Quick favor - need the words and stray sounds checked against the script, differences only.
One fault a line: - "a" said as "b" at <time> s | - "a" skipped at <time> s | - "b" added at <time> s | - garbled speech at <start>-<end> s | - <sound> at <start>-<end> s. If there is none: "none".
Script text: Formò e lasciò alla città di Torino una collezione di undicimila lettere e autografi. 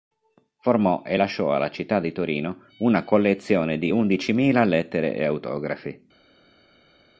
none